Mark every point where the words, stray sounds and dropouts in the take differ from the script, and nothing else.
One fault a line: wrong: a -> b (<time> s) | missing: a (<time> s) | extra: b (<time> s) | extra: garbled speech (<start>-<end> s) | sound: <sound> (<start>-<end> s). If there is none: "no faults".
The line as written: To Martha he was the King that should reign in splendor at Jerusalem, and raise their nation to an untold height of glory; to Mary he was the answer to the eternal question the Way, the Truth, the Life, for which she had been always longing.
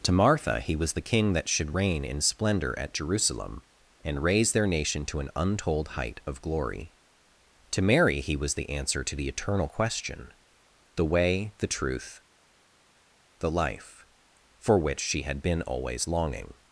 no faults